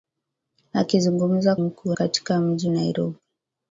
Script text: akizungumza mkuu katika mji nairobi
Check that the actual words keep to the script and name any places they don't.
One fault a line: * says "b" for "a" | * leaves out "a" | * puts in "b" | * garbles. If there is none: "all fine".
all fine